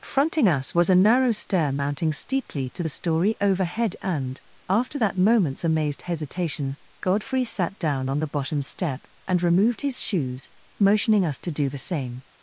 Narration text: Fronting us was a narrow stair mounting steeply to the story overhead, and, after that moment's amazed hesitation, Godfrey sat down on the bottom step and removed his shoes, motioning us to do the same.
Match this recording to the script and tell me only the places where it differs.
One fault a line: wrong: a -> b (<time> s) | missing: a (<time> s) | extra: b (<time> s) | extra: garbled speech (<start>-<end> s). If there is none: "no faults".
no faults